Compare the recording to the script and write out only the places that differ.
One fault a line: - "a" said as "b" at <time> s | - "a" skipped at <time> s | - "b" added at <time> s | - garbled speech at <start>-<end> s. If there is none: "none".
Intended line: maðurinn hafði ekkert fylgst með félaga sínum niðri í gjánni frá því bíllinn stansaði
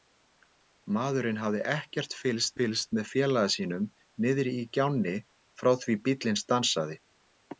- "fylgst" added at 2.6 s